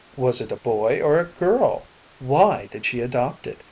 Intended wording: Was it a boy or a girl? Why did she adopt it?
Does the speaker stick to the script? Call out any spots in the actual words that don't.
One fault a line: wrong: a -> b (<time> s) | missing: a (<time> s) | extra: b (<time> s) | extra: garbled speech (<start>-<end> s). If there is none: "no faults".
no faults